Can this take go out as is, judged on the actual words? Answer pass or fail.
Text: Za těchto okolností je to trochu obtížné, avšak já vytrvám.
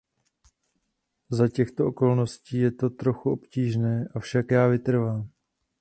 pass